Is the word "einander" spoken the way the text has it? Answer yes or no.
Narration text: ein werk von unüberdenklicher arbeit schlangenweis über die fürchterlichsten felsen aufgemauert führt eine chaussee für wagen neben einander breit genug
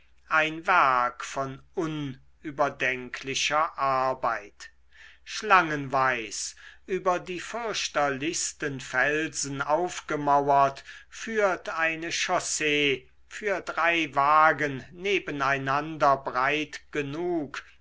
yes